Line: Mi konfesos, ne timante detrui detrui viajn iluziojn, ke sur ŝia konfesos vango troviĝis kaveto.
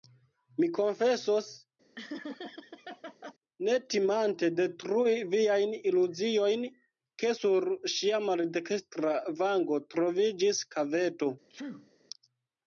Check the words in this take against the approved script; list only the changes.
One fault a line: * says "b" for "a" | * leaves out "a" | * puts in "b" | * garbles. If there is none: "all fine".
* leaves out "detrui"
* says "maldekstra" for "konfesos"